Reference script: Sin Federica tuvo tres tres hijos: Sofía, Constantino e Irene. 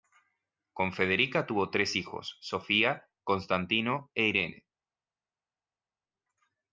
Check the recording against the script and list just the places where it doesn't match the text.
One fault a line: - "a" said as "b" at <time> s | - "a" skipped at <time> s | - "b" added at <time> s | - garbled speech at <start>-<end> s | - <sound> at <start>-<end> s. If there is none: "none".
- "Sin" said as "Con" at 0.7 s
- "tres" skipped at 1.9 s